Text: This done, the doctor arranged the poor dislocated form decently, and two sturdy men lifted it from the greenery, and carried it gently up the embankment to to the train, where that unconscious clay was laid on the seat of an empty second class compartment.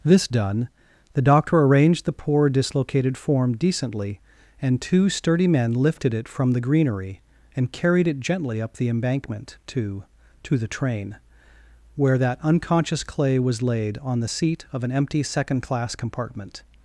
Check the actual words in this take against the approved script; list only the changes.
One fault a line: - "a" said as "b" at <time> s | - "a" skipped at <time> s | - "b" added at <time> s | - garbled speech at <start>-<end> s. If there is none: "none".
none